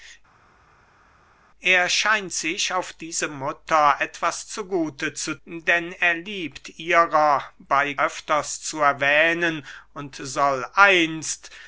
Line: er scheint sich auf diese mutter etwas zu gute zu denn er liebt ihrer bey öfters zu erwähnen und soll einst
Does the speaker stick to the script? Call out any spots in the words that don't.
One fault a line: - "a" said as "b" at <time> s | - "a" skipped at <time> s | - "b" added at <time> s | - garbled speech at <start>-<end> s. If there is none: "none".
none